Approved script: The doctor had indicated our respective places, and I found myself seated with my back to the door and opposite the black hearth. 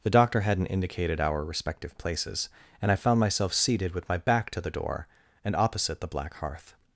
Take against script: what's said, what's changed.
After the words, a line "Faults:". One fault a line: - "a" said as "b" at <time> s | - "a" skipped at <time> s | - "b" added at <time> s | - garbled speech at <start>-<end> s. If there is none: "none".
The doctor hadn't indicated our respective places, and I found myself seated with my back to the door and opposite the black hearth.
Faults:
- "had" said as "hadn't" at 0.4 s